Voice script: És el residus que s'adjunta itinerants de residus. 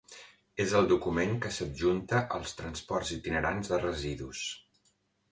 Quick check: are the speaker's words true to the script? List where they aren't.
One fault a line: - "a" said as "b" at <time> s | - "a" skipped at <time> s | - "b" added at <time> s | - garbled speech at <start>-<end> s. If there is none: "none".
- "residus" said as "document" at 0.9 s
- "als transports" added at 2.4 s